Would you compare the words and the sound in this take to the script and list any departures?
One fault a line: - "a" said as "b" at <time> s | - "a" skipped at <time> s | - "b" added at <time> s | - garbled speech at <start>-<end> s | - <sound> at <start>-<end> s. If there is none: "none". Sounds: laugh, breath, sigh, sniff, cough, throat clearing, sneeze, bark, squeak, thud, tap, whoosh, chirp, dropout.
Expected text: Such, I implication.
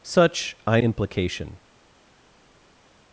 none